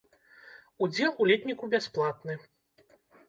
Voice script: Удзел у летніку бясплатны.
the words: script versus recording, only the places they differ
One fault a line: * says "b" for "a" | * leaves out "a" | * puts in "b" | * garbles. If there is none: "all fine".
all fine